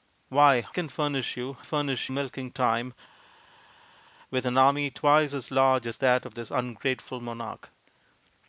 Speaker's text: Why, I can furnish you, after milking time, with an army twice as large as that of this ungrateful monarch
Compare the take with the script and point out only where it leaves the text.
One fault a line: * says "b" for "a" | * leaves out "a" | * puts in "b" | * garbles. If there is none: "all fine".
* leaves out "I"
* says "furnish" for "after"